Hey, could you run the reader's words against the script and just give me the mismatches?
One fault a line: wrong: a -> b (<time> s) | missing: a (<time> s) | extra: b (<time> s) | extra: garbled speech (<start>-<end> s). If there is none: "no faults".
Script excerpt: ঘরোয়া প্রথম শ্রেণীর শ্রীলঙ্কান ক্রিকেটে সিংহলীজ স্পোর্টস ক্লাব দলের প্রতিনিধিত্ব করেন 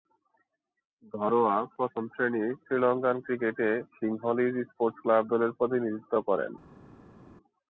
no faults